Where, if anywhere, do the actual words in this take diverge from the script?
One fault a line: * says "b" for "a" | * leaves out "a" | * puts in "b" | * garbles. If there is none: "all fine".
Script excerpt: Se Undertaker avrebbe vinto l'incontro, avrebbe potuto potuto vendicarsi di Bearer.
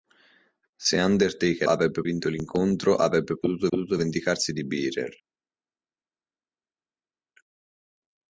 all fine